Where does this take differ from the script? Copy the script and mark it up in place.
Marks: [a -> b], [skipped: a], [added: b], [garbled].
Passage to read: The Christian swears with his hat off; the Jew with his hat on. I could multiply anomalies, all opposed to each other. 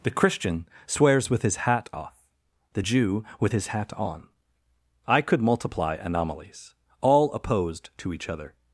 The Christian swears with his hat off; the Jew with his hat on. I could multiply anomalies, all opposed to each other.